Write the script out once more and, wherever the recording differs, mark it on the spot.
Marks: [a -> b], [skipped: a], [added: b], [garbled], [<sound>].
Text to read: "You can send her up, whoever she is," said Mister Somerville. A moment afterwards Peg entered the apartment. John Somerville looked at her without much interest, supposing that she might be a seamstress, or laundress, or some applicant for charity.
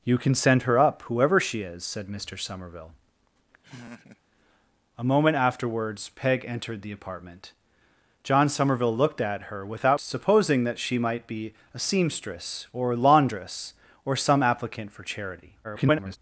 "You can send her up, whoever she is," said Mister Somerville. [laugh] A moment afterwards Peg entered the apartment. John Somerville looked at her without [skipped: much interest,] supposing that she might be a seamstress, or laundress, or some applicant for charity. [garbled]